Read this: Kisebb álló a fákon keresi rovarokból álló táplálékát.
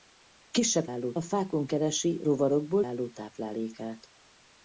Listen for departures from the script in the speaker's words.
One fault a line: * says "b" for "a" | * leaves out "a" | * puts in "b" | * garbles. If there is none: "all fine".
all fine